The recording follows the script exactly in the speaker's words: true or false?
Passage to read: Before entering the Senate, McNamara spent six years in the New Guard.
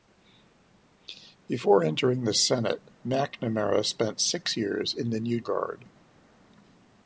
true